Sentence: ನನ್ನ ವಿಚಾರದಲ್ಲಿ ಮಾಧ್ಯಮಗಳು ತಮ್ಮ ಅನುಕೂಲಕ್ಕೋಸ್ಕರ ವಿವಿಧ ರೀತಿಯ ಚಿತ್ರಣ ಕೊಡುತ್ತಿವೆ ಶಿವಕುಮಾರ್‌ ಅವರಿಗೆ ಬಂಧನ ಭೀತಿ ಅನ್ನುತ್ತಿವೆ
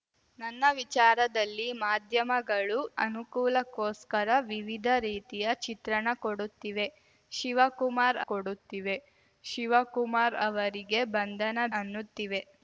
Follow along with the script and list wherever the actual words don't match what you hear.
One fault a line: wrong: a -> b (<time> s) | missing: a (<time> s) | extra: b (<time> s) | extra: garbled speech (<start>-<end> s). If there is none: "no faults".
missing: ತಮ್ಮ (2.8 s)
extra: ಕೊಡುತ್ತಿವೆ ಶಿವಕುಮಾರ್ (8.3 s)
missing: ಭೀತಿ (11.6 s)